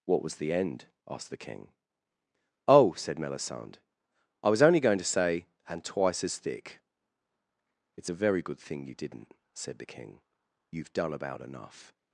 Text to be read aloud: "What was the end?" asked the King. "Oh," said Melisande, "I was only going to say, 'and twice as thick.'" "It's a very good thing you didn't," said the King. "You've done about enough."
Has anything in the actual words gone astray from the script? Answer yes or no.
no